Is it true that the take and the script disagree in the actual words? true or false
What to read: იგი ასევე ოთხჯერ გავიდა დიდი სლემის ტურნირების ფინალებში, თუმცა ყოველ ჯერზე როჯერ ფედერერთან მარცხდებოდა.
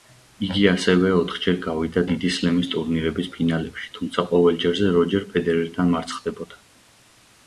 false